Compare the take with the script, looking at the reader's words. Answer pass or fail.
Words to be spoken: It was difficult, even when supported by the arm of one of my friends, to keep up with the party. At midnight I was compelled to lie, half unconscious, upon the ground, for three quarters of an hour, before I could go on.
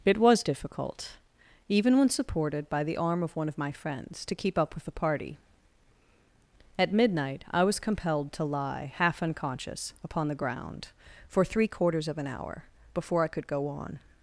pass